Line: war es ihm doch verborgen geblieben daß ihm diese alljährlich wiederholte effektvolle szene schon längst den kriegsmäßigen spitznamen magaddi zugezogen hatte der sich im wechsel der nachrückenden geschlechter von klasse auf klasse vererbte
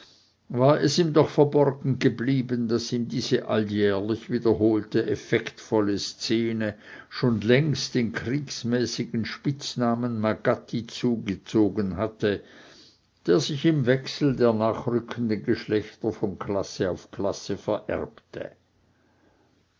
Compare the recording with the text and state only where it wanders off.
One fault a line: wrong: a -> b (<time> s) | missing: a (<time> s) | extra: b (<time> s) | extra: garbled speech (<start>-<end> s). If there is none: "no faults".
no faults